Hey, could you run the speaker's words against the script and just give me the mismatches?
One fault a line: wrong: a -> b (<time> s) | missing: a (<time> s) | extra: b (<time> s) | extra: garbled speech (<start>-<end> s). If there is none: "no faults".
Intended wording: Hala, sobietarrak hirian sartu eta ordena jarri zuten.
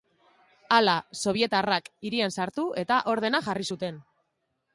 no faults